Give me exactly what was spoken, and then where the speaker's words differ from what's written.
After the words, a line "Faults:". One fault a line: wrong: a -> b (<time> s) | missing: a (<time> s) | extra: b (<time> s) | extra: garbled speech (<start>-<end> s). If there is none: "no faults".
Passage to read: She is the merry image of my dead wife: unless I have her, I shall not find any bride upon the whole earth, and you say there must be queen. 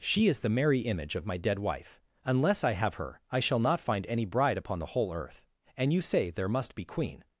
She is the merry image of my dead wife: unless I have her, I shall not find any bride upon the whole earth, and you say there must be queen.
Faults:
no faults